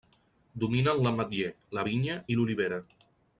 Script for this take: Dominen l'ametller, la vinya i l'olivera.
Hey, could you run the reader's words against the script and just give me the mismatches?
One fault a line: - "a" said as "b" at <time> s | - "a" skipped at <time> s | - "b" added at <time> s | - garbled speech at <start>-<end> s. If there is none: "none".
none